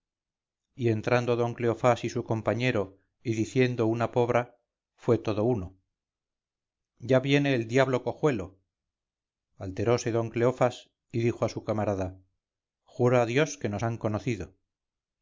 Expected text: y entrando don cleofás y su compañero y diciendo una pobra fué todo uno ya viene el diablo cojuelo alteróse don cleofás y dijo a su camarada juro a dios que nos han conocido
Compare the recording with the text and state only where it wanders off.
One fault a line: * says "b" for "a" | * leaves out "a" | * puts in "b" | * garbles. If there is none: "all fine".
all fine